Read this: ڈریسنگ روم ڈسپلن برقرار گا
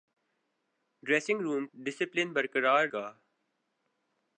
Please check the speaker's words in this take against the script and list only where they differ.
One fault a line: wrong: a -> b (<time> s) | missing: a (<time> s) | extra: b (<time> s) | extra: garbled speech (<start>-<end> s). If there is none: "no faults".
no faults